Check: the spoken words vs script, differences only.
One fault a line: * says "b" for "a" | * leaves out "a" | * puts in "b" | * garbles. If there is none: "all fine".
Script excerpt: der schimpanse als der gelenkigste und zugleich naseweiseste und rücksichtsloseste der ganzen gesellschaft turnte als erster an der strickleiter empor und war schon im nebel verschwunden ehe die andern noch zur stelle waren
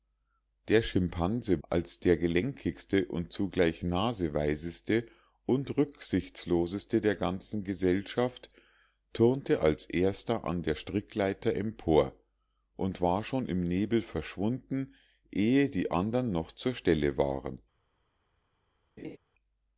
all fine